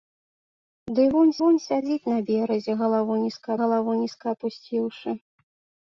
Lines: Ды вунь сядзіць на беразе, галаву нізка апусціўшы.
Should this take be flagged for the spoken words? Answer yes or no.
yes